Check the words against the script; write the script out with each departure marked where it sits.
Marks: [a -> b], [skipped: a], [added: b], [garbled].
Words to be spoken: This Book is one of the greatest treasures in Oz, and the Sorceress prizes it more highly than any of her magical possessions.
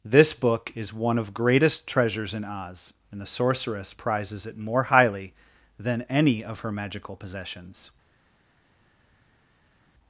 This Book is one of [skipped: the] greatest treasures in Oz, and the Sorceress prizes it more highly than any of her magical possessions.